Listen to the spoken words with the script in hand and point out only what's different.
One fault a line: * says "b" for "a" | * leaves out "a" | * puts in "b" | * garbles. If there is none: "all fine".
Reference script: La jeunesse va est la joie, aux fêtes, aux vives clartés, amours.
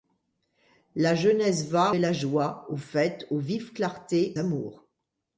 all fine